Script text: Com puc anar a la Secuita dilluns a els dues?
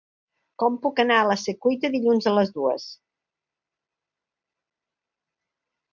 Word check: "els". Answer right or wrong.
wrong